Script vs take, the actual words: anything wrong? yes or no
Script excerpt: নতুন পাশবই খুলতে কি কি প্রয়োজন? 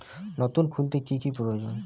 yes